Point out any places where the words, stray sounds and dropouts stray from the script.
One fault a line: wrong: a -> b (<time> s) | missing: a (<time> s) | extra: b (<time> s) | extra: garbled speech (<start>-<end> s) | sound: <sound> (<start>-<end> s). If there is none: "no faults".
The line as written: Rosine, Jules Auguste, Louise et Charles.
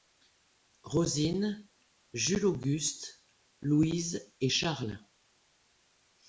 no faults